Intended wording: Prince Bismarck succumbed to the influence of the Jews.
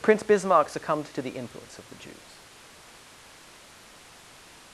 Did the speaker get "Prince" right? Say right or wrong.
right